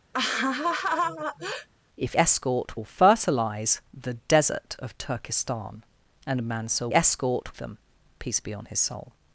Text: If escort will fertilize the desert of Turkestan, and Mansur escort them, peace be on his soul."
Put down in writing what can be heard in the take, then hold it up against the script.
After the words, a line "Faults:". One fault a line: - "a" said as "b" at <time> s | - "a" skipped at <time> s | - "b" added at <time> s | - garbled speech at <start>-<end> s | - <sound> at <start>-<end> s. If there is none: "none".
If escort will fertilize the desert of Turkestan, and Mansur escort them, peace be on his soul."
Faults:
- laugh at 0.1-1.7 s